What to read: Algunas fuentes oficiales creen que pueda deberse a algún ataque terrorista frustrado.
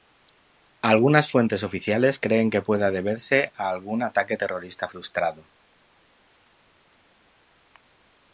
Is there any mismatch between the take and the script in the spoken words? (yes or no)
no